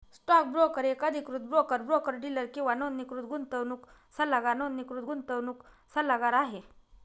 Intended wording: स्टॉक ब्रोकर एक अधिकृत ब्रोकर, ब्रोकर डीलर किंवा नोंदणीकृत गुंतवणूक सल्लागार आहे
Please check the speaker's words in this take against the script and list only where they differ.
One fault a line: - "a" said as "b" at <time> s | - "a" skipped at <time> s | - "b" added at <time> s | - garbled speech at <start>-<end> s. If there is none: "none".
- "नोंदणीकृत गुंतवणूक सल्लागार" added at 4.5 s